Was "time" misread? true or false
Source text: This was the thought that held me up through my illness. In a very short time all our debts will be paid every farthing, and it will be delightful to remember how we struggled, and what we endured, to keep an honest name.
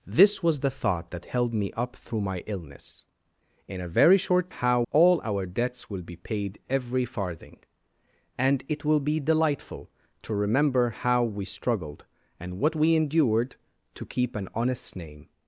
true